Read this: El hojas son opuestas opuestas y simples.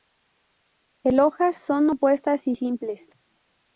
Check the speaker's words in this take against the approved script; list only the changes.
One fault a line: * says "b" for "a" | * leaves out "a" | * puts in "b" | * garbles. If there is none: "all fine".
* leaves out "opuestas"